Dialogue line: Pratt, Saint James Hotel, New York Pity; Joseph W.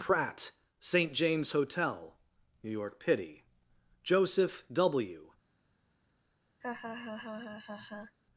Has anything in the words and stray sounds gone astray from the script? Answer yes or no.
yes